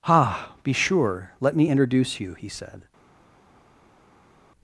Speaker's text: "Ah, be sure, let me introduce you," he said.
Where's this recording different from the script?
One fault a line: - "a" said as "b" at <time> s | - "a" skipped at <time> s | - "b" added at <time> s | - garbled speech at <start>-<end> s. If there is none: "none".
none